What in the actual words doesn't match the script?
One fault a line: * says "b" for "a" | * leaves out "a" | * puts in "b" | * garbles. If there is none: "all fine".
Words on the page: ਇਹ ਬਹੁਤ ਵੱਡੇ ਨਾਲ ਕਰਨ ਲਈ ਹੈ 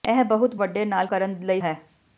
all fine